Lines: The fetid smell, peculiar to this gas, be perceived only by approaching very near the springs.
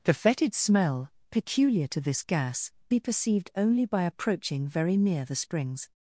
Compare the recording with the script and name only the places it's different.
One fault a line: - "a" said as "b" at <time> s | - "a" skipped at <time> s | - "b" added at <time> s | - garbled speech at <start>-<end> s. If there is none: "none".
none